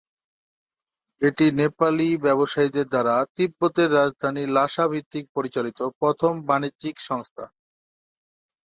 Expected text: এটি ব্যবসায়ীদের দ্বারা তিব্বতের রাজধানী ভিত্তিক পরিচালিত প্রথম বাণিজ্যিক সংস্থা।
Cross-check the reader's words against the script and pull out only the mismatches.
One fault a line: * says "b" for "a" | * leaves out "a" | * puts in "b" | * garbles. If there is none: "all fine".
* puts in "নেপালি"
* puts in "লাসা"